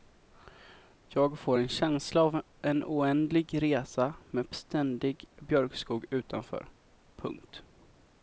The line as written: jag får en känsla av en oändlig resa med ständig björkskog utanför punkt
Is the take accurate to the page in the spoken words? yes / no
yes